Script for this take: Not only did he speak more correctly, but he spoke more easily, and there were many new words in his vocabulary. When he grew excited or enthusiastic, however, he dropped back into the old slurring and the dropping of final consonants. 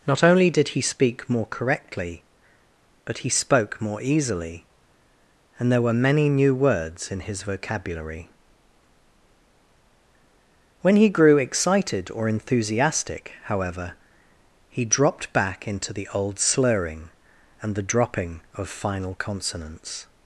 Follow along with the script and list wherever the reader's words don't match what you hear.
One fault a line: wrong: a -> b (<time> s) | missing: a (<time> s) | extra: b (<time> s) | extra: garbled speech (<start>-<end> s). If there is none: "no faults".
no faults